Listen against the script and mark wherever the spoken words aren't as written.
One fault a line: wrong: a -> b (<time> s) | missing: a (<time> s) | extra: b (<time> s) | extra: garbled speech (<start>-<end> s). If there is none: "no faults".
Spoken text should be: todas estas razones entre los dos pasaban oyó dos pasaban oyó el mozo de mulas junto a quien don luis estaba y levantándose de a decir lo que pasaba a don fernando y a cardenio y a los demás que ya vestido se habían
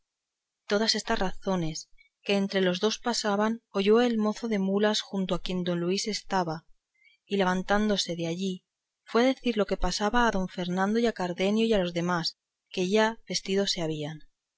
extra: que (2.2 s)
missing: dos pasaban oyó (4.0 s)
extra: allí fue (8.2 s)